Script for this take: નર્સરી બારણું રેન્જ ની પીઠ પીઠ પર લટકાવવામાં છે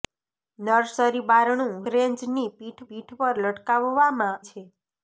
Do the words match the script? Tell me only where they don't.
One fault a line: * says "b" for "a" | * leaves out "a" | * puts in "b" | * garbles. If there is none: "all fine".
all fine